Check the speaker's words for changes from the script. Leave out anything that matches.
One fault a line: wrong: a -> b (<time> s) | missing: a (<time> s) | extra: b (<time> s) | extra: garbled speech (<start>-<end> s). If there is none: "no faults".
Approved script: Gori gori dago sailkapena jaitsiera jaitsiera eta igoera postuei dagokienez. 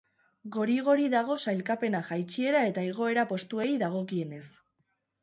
missing: jaitsiera (2.6 s)